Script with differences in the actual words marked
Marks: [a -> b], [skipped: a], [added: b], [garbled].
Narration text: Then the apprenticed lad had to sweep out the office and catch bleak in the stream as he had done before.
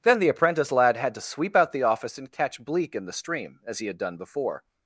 Then the [apprenticed -> apprentice] lad had to sweep out the office and catch bleak in the stream as he had done before.